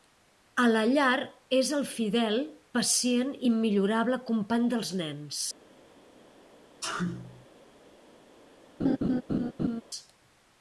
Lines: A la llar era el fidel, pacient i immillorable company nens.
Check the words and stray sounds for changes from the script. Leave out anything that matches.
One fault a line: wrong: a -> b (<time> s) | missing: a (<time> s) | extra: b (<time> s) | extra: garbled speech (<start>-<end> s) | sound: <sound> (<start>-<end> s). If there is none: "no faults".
wrong: era -> és (1.6 s)
extra: dels (4.8 s)
sound: sneeze (6.8-7.5 s)
sound: laugh (8.8-9.8 s)